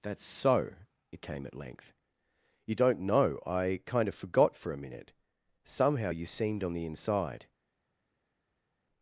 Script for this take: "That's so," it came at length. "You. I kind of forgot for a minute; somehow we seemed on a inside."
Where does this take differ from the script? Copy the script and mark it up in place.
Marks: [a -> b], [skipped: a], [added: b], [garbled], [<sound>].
"That's so," it came at length. "You. [added: don't know] I kind of forgot for a minute; somehow [we -> you] seemed on [a -> the] inside."